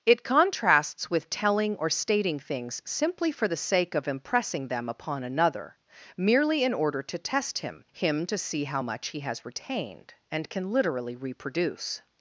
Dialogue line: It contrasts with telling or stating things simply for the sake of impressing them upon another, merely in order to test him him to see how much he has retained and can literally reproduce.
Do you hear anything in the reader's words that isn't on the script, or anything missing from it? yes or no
no